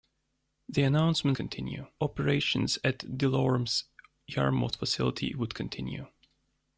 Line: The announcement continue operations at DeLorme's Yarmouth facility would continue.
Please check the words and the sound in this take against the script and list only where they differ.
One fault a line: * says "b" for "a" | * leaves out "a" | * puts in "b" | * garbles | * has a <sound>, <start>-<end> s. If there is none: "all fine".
all fine